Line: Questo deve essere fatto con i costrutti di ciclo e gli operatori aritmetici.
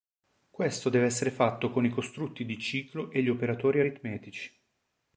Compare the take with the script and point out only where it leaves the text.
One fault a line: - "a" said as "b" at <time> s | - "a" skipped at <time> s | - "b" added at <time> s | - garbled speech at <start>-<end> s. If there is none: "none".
none